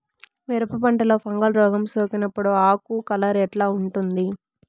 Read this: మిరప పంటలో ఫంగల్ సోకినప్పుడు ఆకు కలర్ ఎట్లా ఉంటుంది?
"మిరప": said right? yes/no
yes